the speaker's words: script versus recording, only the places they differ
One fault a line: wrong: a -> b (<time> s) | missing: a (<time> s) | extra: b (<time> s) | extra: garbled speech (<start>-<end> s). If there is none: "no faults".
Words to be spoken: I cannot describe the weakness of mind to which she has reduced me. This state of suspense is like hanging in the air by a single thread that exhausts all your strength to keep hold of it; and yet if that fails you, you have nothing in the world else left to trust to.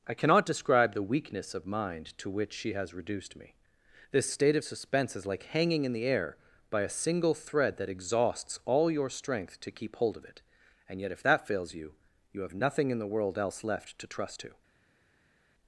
no faults